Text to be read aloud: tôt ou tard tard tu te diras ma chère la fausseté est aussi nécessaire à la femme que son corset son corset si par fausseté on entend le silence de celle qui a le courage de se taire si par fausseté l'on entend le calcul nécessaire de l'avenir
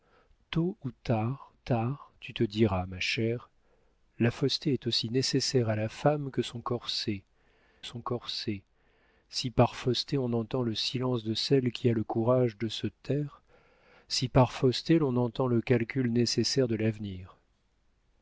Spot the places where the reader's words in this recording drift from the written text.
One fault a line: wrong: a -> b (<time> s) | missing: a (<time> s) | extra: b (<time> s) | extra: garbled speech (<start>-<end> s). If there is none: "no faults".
no faults